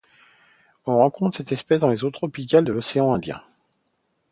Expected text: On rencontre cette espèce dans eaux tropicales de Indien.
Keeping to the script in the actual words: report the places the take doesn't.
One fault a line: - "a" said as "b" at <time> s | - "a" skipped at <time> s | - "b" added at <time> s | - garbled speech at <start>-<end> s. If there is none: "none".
- "les" added at 1.9 s
- "l'océan" added at 2.7 s